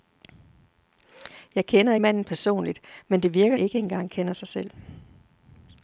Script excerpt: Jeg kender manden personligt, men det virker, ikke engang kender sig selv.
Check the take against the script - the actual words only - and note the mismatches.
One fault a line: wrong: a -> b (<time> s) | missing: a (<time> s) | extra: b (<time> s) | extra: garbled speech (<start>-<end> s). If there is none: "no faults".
no faults